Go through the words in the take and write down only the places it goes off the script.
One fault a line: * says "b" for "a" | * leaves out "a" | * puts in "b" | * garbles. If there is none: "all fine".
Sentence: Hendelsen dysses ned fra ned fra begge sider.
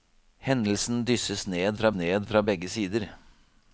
all fine